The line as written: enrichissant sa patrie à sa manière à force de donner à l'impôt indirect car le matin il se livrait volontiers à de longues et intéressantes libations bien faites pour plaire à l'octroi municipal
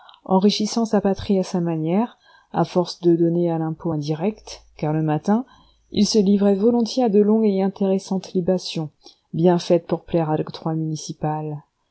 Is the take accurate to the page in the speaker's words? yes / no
yes